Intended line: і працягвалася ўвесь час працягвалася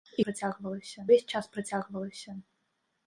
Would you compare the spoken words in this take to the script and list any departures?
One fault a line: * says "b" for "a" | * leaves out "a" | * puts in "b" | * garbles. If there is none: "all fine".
all fine